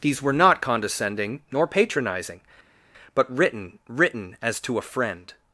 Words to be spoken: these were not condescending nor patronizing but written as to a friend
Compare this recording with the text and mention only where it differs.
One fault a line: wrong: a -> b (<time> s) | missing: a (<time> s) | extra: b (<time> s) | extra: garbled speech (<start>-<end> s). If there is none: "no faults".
extra: written (3.9 s)